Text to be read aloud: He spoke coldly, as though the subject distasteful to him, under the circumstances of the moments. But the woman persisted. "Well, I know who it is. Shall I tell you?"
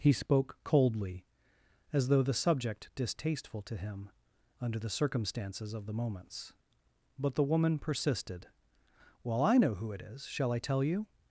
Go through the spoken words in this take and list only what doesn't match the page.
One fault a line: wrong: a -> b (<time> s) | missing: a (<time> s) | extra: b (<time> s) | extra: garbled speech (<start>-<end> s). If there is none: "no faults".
no faults